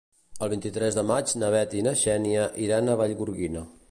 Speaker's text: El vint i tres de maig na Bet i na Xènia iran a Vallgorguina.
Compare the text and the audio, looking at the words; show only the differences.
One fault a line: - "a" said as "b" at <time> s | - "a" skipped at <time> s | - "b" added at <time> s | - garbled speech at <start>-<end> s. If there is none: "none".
none